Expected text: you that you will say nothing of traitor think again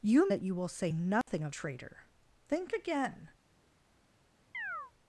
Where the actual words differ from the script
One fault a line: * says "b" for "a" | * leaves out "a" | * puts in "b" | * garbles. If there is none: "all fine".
all fine